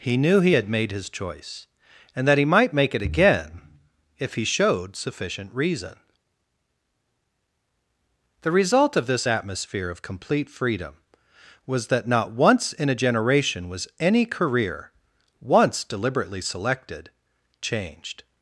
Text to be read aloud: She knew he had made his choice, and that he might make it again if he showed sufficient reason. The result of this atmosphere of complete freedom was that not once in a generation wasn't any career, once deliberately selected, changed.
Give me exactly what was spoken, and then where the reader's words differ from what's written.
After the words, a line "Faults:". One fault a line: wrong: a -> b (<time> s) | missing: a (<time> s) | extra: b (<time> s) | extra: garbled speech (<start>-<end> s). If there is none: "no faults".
He knew he had made his choice, and that he might make it again if he showed sufficient reason. The result of this atmosphere of complete freedom was that not once in a generation was any career, once deliberately selected, changed.
Faults:
wrong: She -> He (0.0 s)
wrong: wasn't -> was (13.7 s)